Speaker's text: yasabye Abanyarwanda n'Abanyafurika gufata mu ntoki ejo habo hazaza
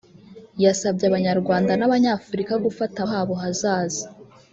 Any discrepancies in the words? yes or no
yes